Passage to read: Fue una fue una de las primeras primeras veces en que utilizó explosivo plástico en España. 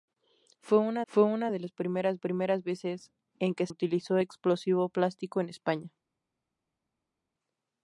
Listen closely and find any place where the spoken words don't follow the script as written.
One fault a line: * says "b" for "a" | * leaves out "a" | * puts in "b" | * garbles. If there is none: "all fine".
all fine